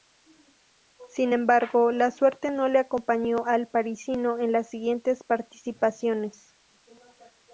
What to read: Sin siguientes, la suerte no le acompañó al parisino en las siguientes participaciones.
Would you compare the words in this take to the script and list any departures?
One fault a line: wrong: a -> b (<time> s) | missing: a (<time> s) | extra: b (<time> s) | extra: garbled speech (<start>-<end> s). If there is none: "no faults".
wrong: siguientes -> embargo (1.3 s)